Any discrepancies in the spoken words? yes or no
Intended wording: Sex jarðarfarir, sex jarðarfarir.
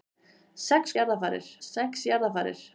no